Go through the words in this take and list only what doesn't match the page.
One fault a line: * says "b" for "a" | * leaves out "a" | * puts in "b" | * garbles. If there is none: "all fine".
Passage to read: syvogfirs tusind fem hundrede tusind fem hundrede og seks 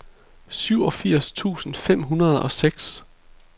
* leaves out "tusind fem hundrede"